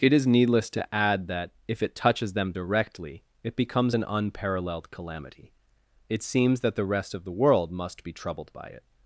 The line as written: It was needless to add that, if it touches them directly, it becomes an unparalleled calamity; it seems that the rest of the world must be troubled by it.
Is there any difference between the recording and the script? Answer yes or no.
yes